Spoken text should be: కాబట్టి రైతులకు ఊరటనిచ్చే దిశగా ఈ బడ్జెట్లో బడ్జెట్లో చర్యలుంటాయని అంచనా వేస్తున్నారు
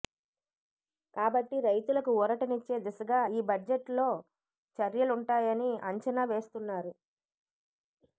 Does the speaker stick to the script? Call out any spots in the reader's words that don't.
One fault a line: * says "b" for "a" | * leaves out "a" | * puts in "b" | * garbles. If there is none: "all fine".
* leaves out "బడ్జెట్లో"